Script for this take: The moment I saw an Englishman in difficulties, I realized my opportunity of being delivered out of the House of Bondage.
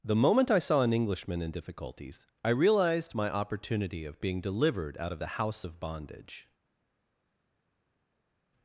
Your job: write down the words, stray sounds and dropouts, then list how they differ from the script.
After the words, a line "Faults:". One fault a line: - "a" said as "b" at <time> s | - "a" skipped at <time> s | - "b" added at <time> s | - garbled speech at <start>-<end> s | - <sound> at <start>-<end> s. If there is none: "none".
The moment I saw an Englishman in difficulties, I realized my opportunity of being delivered out of the House of Bondage.
Faults:
none